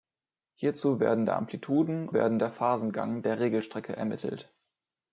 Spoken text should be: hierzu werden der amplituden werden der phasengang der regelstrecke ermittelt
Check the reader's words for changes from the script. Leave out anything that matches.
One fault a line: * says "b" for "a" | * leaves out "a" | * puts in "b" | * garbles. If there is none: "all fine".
all fine